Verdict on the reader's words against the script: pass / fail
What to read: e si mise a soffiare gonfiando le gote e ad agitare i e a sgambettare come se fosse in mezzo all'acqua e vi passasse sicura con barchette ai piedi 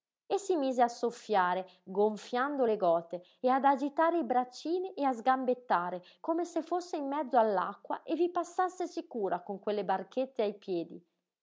fail